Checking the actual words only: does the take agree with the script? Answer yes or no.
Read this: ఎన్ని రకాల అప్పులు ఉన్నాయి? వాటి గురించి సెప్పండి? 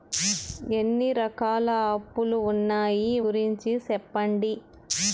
no